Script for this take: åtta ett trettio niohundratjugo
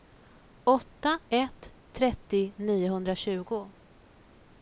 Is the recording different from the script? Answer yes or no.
no